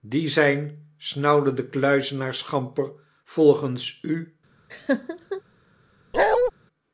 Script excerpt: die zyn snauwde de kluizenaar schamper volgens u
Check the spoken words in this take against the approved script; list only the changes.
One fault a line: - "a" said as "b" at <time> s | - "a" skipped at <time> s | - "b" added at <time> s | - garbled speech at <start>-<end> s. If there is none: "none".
none